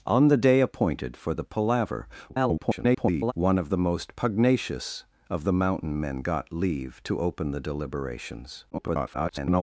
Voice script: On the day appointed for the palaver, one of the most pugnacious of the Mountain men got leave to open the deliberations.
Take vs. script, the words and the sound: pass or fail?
fail